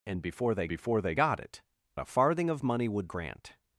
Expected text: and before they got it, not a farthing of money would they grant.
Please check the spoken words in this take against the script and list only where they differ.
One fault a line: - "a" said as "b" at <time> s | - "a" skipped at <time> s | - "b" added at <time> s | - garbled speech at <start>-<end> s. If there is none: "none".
- "before they" added at 0.7 s
- "not" skipped at 1.6 s
- "they" skipped at 3.1 s